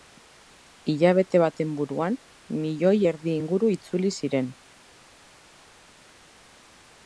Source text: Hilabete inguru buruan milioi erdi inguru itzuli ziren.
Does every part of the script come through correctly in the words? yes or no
no